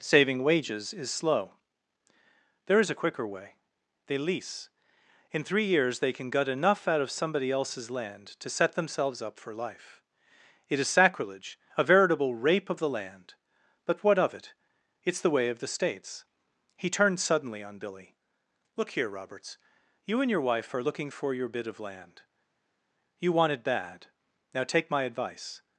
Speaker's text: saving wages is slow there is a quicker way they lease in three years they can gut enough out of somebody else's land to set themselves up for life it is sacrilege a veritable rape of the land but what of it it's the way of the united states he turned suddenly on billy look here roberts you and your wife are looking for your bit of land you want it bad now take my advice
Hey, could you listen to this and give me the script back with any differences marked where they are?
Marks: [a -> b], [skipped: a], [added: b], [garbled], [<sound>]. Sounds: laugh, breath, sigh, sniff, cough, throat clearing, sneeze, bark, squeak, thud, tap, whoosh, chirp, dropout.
saving wages is slow there is a quicker way they lease in three years they can gut enough out of somebody else's land to set themselves up for life it is sacrilege a veritable rape of the land but what of it it's the way of the [skipped: united] states he turned suddenly on billy look here roberts you and your wife are looking for your bit of land you want it bad now take my advice